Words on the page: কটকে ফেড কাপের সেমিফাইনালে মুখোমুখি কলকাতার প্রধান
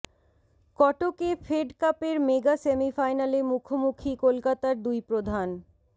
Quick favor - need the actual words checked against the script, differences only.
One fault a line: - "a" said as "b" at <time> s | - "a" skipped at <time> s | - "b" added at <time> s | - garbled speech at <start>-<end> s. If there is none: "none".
- "মেগা" added at 2.3 s
- "দুই" added at 4.8 s